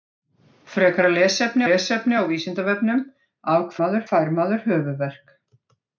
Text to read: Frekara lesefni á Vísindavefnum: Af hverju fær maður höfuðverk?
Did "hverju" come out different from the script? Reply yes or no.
yes